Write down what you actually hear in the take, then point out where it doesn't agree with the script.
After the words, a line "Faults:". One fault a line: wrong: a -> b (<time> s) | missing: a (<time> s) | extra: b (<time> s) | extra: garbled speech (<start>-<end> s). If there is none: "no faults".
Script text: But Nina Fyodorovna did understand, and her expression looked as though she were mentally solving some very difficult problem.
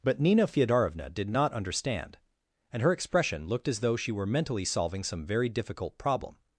But Nina Fyodorovna did not understand, and her expression looked as though she were mentally solving some very difficult problem.
Faults:
extra: not (1.3 s)